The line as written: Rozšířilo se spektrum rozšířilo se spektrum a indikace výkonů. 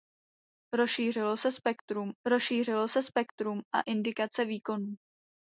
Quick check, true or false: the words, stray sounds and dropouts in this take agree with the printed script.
true